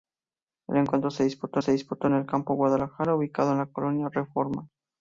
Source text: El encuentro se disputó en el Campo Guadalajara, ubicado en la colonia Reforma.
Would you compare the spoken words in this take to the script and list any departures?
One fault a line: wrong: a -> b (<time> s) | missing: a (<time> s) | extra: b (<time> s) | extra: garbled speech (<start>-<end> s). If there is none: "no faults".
extra: se disputó (1.6 s)